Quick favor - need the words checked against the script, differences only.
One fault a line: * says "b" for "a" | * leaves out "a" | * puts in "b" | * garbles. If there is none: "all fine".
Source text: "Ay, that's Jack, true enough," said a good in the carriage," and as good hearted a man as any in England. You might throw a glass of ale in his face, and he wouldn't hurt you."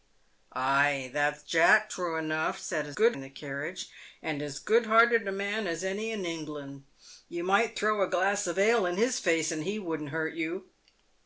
all fine